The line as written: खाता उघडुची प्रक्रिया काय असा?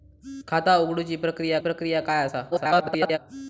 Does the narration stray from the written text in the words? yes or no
yes